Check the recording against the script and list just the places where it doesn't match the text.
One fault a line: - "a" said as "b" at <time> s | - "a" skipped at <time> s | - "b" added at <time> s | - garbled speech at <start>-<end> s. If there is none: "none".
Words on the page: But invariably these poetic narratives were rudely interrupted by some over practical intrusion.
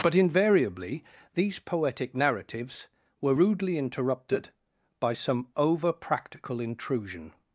none